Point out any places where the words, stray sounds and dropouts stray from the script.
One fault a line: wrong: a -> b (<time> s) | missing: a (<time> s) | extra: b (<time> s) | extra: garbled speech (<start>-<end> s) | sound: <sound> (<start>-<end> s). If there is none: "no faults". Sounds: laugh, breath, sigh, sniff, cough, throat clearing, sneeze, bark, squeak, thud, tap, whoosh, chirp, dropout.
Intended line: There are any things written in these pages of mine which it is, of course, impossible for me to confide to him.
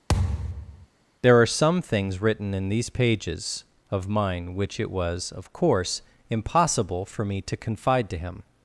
sound: thud (0.1-0.9 s)
wrong: any -> some (1.5 s)
wrong: is -> was (4.9 s)